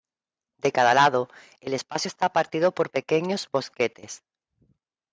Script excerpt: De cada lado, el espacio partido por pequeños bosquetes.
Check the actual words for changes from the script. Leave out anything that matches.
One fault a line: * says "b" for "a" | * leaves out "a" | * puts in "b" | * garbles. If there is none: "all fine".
* puts in "está"